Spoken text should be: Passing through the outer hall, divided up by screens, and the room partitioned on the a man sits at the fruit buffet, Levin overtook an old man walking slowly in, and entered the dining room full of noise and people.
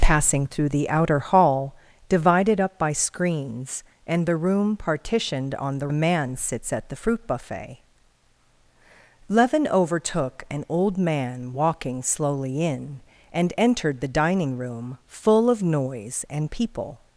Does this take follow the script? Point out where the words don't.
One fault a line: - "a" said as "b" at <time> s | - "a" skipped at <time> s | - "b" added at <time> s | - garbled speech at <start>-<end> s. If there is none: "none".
none